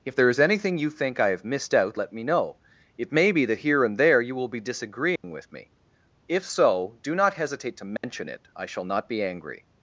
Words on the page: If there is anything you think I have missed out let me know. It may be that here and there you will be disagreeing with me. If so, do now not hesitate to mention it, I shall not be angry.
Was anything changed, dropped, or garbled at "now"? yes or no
yes